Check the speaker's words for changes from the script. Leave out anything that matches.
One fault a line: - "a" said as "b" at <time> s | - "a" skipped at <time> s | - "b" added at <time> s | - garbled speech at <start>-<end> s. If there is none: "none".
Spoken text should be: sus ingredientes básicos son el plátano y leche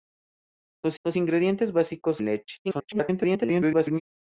- "sus" added at 1.0 s
- "son el plátano" skipped at 2.2 s
- garbled speech at 2.6-4.0 s